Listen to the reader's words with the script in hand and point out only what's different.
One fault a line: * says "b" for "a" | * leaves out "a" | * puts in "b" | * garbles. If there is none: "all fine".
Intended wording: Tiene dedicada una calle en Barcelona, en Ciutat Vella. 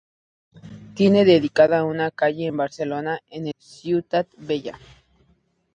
all fine